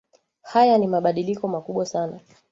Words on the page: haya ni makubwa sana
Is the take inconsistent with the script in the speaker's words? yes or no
yes